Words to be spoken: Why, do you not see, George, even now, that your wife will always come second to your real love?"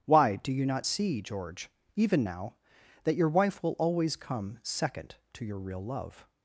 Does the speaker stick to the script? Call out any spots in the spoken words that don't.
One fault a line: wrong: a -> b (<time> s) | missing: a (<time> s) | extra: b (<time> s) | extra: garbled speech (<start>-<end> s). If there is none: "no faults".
no faults